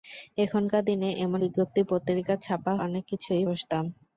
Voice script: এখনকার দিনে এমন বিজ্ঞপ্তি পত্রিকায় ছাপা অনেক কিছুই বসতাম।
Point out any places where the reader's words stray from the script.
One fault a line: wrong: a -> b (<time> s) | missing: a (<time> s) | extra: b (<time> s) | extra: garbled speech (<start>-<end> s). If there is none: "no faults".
no faults